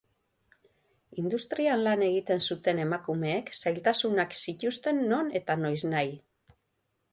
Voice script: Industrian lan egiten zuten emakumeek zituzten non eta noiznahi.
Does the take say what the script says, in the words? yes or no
no